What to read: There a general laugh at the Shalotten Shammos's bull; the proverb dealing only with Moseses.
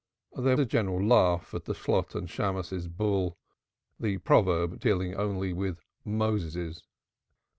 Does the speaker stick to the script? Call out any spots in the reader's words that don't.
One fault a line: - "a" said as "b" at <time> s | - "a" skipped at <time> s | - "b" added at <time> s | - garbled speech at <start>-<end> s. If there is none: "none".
none